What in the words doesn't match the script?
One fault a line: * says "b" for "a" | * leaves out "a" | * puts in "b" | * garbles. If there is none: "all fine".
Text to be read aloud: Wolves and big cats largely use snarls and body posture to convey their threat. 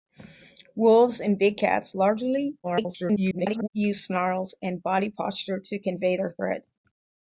* garbles